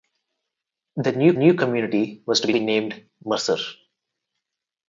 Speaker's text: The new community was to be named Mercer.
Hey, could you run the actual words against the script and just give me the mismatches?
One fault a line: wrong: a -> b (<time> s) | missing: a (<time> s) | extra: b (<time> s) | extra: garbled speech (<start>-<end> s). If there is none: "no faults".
extra: new (1.3 s)
extra: be (2.5 s)